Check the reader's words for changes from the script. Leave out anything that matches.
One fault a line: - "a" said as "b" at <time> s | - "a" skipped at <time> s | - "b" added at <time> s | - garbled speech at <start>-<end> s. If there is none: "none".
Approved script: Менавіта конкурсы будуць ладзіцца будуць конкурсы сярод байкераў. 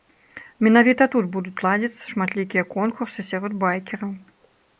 - "конкурсы" said as "тут" at 1.1 s
- "будуць" said as "шматлікія" at 2.1 s